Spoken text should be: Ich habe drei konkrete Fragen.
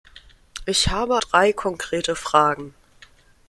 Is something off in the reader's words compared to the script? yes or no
no